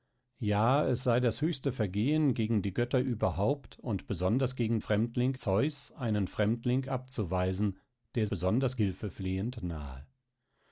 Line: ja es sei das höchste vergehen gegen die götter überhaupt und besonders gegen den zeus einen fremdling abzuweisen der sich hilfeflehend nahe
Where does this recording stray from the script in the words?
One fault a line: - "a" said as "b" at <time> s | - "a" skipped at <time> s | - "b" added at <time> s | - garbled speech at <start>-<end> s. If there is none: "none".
- "den" said as "fremdling" at 4.8 s
- "sich" said as "besonders" at 8.3 s